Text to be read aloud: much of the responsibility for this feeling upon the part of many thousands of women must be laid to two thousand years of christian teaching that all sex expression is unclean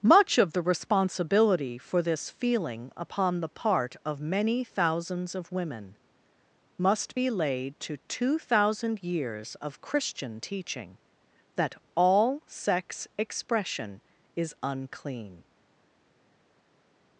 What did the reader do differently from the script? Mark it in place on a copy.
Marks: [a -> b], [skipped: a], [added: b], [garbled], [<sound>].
much of the responsibility for this feeling upon the part of many thousands of women must be laid to two thousand years of christian teaching that all sex expression is unclean